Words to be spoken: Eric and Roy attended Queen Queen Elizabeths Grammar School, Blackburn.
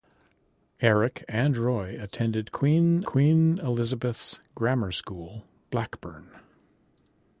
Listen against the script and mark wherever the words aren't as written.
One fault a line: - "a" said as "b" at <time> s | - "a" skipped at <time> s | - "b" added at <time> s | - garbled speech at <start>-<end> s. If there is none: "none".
none